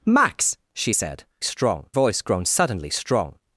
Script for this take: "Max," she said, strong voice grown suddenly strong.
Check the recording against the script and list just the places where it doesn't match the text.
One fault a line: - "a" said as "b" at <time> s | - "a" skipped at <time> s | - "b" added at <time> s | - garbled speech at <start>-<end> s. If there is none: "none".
none